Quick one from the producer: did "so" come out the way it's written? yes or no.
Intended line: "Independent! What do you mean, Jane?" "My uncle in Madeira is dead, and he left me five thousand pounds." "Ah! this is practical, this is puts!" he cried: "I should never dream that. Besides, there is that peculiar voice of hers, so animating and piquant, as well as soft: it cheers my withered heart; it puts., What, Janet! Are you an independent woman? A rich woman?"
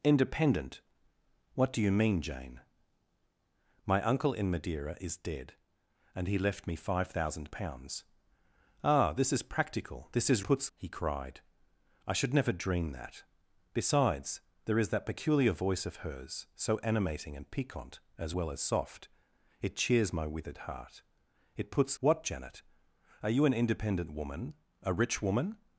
yes